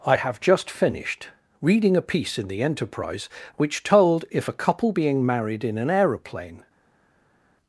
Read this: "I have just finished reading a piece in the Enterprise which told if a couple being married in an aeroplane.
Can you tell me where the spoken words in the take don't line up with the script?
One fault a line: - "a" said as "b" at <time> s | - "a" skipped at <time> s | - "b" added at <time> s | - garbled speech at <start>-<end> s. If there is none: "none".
none